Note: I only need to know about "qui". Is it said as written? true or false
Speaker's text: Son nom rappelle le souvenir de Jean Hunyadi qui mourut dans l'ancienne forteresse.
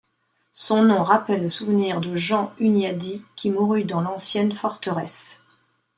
true